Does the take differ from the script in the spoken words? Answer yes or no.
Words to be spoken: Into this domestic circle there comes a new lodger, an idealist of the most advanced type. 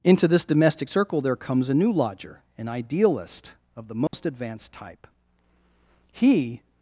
yes